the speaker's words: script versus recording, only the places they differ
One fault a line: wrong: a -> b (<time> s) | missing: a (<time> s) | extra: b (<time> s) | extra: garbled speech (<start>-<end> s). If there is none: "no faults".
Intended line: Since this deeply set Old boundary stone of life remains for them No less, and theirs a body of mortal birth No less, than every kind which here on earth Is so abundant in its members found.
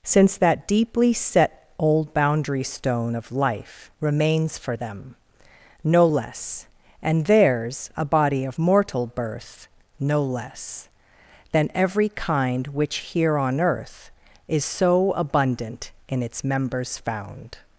wrong: this -> that (0.4 s)